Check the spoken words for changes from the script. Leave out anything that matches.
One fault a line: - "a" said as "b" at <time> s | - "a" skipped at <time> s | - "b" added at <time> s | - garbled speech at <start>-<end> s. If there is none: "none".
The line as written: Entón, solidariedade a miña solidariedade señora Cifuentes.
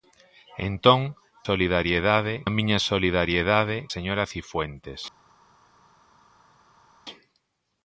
none